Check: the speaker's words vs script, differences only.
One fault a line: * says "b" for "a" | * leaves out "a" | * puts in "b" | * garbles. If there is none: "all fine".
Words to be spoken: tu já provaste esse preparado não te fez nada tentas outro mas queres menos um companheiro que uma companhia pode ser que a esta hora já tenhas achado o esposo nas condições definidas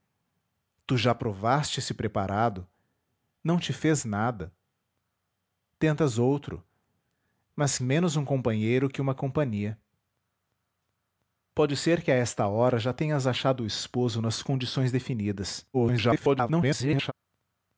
* leaves out "queres"
* garbles